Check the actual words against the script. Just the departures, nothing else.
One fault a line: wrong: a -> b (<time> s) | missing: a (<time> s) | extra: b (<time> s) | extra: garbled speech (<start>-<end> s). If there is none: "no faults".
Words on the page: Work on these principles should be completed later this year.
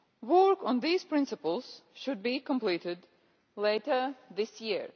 no faults